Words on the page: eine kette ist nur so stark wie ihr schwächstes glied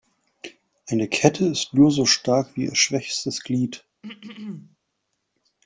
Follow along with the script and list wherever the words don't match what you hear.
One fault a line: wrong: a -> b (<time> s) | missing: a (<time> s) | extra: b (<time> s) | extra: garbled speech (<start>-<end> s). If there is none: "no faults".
no faults